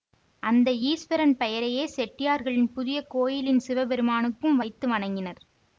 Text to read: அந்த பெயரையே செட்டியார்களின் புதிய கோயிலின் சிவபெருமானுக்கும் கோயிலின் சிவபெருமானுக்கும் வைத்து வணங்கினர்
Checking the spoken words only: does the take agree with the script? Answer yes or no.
no